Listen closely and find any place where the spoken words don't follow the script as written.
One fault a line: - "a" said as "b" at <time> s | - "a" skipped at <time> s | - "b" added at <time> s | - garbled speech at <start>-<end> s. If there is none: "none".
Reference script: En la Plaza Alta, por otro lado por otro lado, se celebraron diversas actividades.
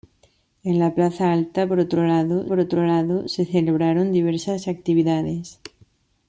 none